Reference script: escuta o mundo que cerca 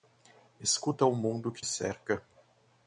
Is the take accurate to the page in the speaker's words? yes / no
yes